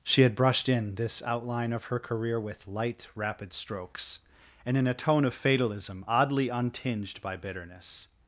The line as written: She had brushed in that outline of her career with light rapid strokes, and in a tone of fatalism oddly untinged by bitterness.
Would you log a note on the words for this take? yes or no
yes